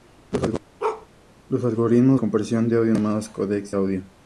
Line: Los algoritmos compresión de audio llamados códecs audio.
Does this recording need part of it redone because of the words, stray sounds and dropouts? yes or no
yes